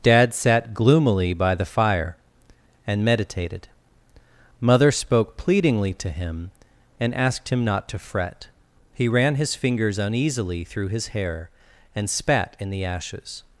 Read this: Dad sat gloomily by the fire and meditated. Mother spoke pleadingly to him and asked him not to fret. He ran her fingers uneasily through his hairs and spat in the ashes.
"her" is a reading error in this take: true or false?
true